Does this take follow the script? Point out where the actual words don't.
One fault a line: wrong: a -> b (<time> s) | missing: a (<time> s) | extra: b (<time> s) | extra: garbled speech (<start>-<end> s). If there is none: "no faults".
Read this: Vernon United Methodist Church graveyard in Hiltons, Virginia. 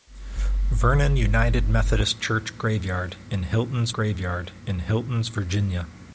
extra: graveyard in Hiltons (3.9 s)